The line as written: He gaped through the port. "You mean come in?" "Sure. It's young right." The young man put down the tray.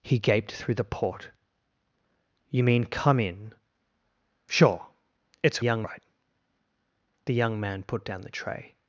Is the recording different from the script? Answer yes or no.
no